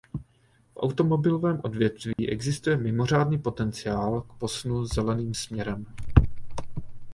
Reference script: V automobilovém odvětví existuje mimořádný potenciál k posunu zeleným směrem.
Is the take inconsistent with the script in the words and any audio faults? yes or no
yes